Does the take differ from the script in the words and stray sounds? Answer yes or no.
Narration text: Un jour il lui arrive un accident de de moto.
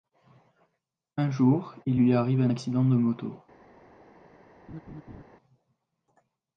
yes